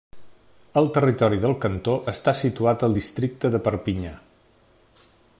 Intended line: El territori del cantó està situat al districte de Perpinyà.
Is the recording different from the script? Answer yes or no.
no